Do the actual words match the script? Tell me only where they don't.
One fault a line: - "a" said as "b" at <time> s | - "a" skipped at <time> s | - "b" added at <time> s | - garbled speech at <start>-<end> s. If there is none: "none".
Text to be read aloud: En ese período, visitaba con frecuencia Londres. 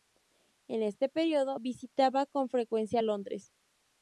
- "ese" said as "este" at 0.8 s